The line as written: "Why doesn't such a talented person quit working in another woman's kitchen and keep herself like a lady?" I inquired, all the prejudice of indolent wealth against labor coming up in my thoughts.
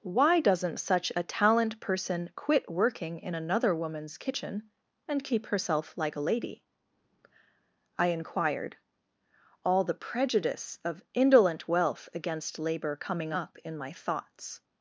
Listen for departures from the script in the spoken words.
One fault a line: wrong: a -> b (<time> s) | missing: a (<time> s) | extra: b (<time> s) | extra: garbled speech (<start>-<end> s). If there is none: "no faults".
wrong: talented -> talent (1.2 s)